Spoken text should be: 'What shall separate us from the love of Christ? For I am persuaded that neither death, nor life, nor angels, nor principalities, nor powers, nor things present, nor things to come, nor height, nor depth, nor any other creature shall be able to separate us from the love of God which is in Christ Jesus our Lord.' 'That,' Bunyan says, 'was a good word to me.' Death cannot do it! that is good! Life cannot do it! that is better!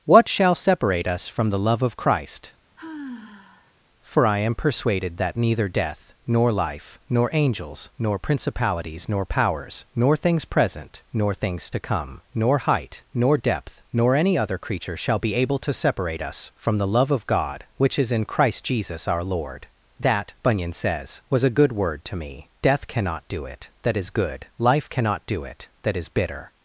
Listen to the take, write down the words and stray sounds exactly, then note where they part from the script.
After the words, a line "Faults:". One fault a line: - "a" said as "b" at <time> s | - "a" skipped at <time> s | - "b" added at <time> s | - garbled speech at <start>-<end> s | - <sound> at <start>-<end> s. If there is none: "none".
'What shall separate us from the love of Christ? For I am persuaded that neither death, nor life, nor angels, nor principalities, nor powers, nor things present, nor things to come, nor height, nor depth, nor any other creature shall be able to separate us from the love of God which is in Christ Jesus our Lord.' 'That,' Bunyan says, 'was a good word to me.' Death cannot do it! that is good! Life cannot do it! that is bitter!
Faults:
- sigh at 2.8-3.7 s
- "better" said as "bitter" at 26.1 s